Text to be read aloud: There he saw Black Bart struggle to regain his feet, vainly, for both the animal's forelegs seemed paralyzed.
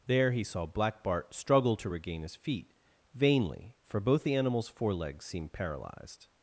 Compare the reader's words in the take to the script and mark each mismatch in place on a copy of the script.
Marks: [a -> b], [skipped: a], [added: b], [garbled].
There he saw Black Bart struggle to regain his feet, vainly, for both the animal's forelegs seemed paralyzed.